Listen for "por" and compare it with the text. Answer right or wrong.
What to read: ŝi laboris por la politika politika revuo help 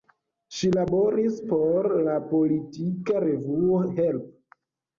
right